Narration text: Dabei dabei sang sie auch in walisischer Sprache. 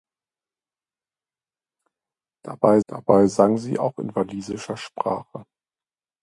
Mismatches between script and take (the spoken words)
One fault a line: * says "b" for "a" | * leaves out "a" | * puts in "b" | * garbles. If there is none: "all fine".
all fine